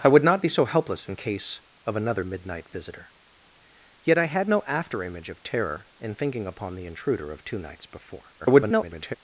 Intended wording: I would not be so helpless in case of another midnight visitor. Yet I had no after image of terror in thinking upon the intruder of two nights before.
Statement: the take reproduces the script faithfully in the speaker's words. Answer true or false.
false